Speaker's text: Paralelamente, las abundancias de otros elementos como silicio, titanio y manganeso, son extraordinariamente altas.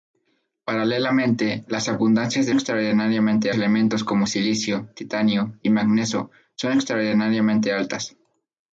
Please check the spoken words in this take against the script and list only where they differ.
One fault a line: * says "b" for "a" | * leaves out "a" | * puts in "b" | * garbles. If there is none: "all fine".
* says "extraordinariamente" for "otros"